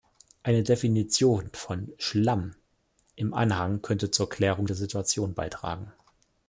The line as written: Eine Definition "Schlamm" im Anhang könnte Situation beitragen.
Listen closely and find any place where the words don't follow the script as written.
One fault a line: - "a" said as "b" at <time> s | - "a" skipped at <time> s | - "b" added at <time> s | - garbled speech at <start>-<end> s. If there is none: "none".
- "von" added at 1.5 s
- "zur Klärung der" added at 4.1 s